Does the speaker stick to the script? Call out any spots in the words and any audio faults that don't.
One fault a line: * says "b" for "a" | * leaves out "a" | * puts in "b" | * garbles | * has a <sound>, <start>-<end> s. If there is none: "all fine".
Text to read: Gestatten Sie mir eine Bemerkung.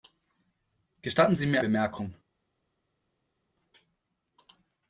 * leaves out "eine"